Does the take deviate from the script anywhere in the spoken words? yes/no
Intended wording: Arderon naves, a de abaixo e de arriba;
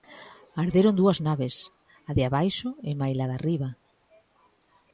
yes